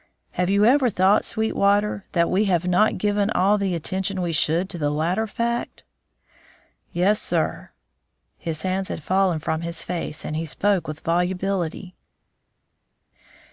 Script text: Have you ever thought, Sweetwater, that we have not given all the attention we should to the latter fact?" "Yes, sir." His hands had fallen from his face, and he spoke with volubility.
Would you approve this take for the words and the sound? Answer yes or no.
yes